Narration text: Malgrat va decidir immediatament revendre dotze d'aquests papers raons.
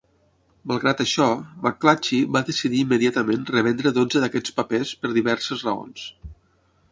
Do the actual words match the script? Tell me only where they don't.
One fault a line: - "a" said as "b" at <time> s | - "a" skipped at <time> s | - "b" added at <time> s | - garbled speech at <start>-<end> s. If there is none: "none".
- "això McClatchy" added at 1.0 s
- "per diverses" added at 5.0 s